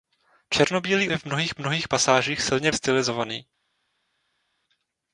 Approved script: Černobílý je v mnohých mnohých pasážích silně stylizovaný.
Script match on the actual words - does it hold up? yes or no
yes